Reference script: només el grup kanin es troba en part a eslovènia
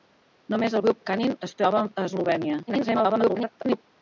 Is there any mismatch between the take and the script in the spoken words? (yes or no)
yes